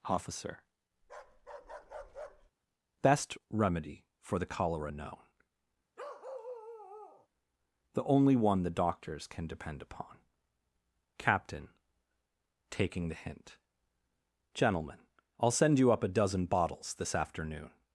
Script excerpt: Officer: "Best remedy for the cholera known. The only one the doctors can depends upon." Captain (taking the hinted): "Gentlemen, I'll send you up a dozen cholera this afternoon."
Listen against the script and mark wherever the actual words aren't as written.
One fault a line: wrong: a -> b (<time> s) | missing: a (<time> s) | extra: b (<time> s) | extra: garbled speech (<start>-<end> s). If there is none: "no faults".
wrong: depends -> depend (9.5 s)
wrong: hinted -> hint (13.1 s)
wrong: cholera -> bottles (16.4 s)